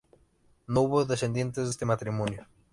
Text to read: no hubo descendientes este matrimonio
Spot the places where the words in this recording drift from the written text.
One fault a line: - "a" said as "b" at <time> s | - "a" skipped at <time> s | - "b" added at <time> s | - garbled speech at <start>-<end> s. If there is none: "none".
none